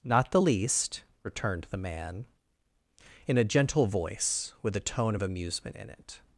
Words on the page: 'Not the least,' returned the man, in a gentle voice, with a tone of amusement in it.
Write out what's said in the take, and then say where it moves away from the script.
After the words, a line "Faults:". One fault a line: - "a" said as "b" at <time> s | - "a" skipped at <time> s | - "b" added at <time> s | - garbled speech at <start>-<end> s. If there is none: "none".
'Not the least,' returned the man, in a gentle voice, with a tone of amusement in it.
Faults:
none